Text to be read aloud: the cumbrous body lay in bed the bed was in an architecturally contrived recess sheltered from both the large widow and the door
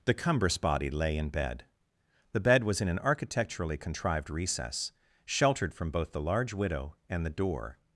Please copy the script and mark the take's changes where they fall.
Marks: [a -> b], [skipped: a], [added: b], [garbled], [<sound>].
the cumbrous body lay in bed the bed was in an architecturally contrived recess sheltered from both the large widow and the door